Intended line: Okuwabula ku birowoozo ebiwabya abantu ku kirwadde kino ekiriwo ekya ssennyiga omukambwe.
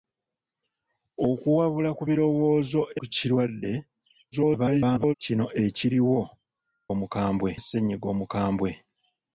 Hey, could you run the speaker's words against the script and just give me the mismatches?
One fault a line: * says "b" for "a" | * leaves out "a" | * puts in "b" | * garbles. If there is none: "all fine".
* leaves out "ebiwabya abantu"
* garbles
* says "omukambwe" for "ekya"